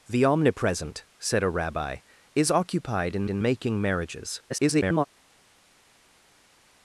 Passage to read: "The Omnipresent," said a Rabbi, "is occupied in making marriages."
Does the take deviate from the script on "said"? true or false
false